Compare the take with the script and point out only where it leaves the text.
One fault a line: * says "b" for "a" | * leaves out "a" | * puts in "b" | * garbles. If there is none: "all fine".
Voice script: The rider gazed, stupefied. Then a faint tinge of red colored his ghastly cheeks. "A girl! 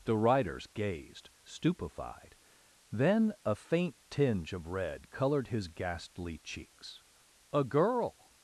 * says "riders" for "rider"